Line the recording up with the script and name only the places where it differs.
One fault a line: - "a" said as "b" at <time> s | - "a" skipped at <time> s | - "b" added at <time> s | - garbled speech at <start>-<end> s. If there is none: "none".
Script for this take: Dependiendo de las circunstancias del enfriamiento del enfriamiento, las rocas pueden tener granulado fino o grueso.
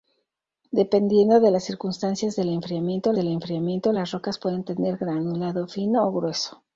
none